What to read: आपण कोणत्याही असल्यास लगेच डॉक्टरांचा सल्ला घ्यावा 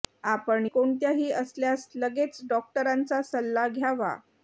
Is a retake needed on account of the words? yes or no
no